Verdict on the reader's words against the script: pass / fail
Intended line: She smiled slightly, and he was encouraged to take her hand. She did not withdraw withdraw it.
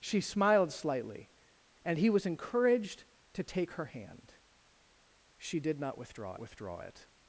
pass